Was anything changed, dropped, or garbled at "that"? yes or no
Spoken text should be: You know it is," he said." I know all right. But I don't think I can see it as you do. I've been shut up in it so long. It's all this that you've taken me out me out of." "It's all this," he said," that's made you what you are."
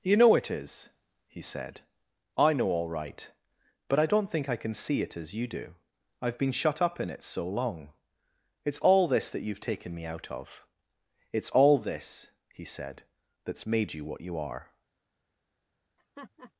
no